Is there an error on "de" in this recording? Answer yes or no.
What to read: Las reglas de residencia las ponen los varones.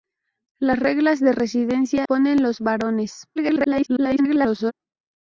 no